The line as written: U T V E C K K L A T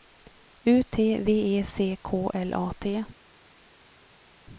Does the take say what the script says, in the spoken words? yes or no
no